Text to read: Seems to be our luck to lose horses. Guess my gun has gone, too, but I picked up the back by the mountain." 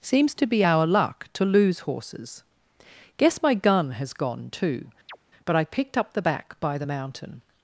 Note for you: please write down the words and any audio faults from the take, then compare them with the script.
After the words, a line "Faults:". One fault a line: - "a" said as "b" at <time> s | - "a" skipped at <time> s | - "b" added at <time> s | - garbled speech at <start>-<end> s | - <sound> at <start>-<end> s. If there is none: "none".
Seems to be our luck to lose horses. Guess my gun has gone, too, but I picked up the back by the mountain."
Faults:
- chirp at 5.1-5.2 s